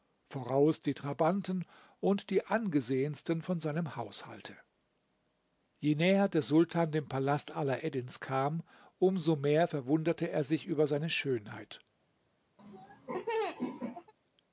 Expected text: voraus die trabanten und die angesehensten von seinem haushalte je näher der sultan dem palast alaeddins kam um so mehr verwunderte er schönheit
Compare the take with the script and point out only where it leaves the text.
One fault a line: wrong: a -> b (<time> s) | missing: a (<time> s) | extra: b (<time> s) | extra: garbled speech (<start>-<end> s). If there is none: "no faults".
extra: sich über seine (10.4 s)